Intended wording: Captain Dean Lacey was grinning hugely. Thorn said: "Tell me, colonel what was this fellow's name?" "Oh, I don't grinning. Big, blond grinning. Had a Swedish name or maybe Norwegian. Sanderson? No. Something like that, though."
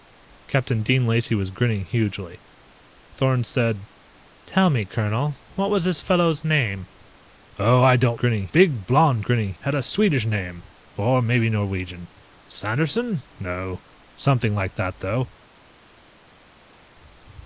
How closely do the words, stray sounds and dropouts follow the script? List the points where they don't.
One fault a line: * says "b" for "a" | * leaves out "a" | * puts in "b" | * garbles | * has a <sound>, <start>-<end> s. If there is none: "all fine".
all fine